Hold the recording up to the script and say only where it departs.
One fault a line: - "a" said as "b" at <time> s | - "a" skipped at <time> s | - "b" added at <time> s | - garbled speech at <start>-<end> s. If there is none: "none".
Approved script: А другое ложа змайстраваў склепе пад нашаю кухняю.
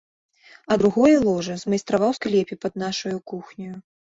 none